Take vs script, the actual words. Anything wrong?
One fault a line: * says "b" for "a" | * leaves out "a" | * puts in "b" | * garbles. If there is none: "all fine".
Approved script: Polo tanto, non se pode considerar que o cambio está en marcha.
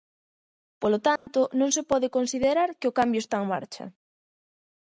all fine